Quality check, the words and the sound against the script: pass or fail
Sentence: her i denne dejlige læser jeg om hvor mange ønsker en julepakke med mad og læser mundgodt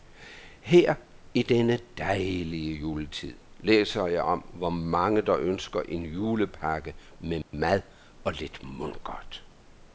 fail